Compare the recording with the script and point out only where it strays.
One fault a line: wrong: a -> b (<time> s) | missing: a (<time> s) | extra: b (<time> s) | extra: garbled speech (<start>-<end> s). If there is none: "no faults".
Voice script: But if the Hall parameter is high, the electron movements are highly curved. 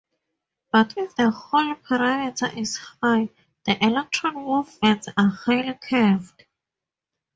no faults